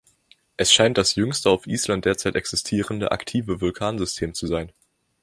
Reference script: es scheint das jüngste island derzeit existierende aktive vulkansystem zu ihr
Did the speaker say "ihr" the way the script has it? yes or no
no